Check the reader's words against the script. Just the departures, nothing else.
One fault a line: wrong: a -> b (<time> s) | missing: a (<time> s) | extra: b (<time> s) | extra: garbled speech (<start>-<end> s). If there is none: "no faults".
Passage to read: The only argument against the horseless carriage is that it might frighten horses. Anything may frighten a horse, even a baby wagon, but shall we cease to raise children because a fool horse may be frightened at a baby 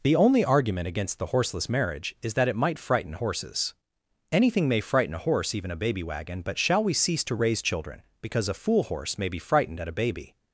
wrong: carriage -> marriage (1.7 s)